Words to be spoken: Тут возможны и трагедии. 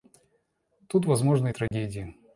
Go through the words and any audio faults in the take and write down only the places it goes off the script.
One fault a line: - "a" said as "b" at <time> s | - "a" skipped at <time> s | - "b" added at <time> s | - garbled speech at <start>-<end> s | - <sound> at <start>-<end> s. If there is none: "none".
- dropout at 1.7-1.7 s